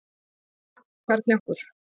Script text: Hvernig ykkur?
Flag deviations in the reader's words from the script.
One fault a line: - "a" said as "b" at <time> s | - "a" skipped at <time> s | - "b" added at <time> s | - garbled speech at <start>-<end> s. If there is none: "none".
none